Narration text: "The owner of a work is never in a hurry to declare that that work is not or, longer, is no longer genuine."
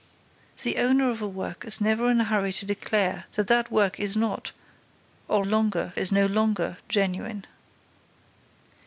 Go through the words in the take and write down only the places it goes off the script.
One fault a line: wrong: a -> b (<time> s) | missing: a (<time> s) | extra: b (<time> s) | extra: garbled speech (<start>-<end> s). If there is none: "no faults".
no faults